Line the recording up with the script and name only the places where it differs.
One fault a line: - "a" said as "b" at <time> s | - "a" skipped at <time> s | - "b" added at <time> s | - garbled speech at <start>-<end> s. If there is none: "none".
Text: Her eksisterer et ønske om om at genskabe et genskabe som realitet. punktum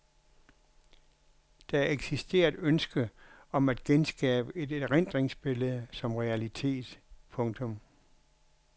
- "Her" said as "Der" at 1.7 s
- "om" skipped at 3.7 s
- "genskabe" said as "erindringsbillede" at 4.7 s